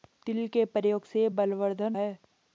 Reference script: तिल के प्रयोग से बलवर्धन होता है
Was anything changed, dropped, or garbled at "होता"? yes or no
yes